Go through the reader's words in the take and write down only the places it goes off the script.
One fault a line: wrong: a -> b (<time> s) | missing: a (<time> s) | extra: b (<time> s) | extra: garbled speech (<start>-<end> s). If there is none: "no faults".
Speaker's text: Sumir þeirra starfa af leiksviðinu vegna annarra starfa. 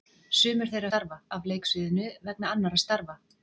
no faults